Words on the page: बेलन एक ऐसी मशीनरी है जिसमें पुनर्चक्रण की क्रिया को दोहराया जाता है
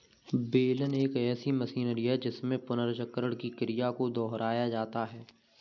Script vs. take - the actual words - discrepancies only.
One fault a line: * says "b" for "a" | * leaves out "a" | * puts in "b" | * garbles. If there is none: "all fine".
all fine